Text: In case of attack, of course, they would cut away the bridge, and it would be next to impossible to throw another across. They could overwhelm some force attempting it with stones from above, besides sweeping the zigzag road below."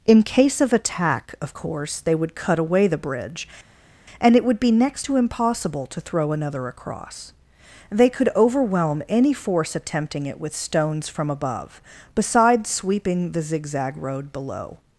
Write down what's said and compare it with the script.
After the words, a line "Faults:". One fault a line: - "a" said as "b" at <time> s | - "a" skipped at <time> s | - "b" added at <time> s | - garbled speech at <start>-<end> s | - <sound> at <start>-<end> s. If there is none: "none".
In case of attack, of course, they would cut away the bridge, and it would be next to impossible to throw another across. They could overwhelm any force attempting it with stones from above, besides sweeping the zigzag road below."
Faults:
- "some" said as "any" at 9.1 s